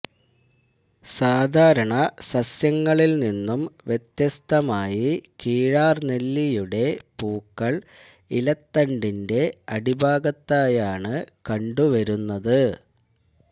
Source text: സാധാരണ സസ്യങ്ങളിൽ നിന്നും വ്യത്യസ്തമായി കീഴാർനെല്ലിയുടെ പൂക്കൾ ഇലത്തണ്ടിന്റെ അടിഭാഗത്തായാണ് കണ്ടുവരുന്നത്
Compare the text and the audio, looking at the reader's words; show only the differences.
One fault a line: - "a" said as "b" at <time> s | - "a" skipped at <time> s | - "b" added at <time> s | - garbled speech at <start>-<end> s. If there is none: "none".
none